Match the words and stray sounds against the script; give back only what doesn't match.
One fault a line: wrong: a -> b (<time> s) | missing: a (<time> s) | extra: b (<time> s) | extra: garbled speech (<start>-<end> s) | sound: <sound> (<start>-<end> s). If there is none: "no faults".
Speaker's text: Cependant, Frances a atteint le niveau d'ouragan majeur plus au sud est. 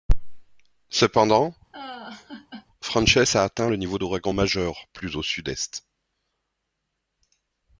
sound: laugh (1.7-2.7 s)